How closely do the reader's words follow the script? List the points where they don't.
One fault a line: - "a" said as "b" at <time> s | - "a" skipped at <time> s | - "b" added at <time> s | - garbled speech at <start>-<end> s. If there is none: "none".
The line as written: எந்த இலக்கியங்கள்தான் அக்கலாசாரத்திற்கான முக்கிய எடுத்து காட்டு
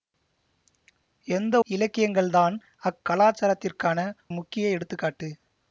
none